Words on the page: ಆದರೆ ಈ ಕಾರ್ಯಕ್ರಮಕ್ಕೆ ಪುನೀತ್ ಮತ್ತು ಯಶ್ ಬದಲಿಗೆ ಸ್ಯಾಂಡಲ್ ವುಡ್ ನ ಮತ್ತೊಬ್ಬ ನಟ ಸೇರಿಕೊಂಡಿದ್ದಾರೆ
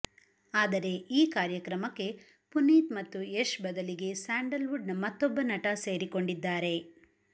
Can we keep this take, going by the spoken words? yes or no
yes